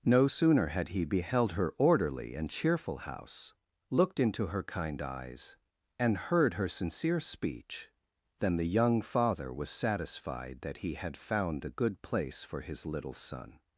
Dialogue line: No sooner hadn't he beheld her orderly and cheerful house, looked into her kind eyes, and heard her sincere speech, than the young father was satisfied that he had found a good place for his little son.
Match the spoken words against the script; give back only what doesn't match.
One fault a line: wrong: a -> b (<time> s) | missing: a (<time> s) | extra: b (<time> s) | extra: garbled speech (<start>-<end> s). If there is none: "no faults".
wrong: hadn't -> had (0.7 s)